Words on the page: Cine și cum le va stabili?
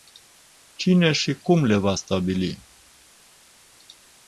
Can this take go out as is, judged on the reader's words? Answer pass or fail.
pass